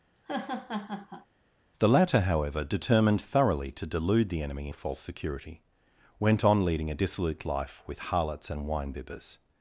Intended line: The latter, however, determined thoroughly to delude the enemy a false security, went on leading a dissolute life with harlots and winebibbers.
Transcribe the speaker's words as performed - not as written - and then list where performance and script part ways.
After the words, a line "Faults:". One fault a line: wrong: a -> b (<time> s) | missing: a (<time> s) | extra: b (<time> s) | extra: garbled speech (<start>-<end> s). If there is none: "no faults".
The latter, however, determined thoroughly to delude the enemy a false security, went on leading a dissolute life with harlots and winebibbers.
Faults:
no faults